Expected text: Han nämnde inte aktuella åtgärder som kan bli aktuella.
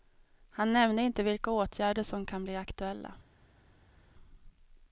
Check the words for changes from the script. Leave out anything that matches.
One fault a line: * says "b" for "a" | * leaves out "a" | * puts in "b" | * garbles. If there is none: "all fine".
* says "vilka" for "aktuella"